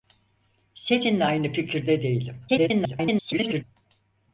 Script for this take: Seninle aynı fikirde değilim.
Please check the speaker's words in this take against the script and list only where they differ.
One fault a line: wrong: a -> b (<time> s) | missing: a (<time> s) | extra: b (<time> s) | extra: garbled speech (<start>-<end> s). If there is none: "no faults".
extra: garbled speech (2.5-3.6 s)